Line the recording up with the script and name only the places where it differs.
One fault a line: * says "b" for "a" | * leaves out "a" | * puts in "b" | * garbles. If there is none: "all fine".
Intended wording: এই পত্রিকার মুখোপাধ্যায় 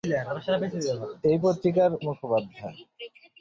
all fine